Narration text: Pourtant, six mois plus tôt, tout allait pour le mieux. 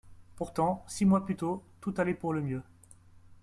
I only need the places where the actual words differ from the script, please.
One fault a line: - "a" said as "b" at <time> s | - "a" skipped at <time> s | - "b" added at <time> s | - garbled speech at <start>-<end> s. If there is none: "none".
none